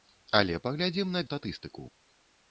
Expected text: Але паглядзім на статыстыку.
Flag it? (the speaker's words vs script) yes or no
no